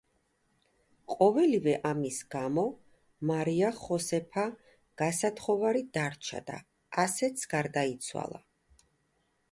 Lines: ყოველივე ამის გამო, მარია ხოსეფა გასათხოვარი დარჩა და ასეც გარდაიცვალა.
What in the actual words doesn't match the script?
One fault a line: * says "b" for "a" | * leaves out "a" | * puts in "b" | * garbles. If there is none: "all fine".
all fine